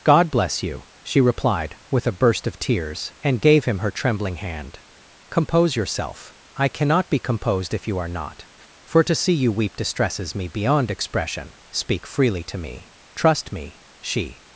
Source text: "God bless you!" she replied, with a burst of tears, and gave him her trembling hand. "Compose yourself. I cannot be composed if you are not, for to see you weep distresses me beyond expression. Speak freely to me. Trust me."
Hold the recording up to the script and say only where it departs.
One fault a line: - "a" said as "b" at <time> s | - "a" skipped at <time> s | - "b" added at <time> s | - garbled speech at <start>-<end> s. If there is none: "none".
- "She" added at 14.0 s